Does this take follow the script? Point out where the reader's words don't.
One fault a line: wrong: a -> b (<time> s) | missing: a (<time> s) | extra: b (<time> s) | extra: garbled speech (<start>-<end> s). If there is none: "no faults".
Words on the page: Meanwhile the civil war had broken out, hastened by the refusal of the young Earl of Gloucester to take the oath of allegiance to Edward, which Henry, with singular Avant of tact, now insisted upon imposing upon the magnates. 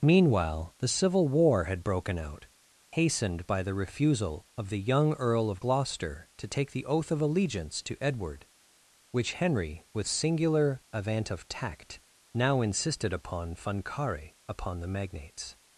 wrong: imposing -> funcare (13.6 s)